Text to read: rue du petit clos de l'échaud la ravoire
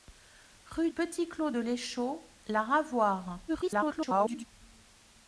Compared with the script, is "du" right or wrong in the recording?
wrong